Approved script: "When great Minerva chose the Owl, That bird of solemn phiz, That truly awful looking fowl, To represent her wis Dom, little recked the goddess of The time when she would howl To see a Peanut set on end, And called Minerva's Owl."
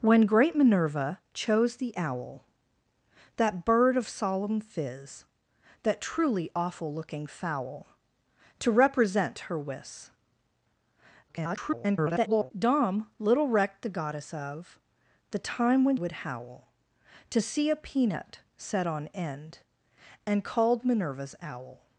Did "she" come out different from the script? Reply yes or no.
yes